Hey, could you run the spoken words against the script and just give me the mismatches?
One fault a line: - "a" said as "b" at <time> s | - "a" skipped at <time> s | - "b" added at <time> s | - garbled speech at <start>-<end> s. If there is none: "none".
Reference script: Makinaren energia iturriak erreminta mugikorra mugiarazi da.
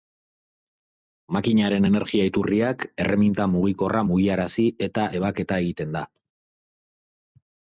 - "eta ebaketa egiten" added at 4.9 s